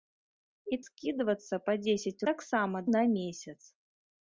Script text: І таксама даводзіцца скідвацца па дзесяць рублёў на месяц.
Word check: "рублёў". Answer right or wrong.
wrong